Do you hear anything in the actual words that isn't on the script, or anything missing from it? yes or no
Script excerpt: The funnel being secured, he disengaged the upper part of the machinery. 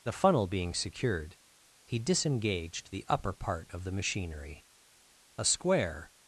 yes